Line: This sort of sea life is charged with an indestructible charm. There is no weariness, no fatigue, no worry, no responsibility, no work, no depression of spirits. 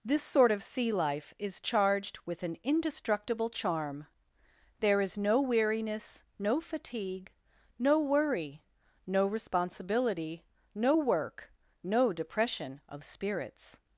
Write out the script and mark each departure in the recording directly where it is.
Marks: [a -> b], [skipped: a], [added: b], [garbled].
This sort of sea life is charged with an indestructible charm. There is no weariness, no fatigue, no worry, no responsibility, no work, no depression of spirits.